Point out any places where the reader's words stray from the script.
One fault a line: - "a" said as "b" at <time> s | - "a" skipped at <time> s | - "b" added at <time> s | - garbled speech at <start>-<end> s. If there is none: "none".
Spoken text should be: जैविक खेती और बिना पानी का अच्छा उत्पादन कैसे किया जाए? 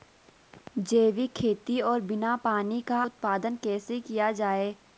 - "अच्छा" skipped at 3.0 s